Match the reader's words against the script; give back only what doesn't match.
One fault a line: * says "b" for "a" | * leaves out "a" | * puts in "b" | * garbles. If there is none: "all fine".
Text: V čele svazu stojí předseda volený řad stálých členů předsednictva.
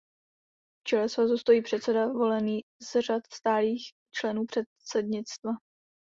* puts in "z"